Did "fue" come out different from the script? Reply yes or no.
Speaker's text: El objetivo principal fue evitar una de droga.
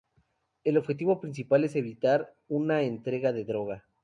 yes